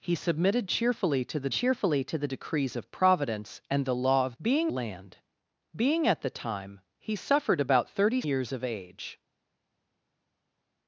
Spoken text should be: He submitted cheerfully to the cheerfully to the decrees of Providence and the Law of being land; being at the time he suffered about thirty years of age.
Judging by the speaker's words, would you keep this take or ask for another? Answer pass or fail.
pass